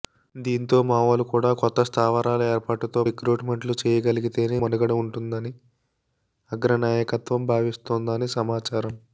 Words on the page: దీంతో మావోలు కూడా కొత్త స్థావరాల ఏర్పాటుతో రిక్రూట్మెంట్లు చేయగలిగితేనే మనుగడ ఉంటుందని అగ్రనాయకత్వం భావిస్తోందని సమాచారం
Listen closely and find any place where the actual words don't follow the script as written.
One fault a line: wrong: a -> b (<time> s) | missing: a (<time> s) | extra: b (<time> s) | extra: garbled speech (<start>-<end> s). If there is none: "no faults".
no faults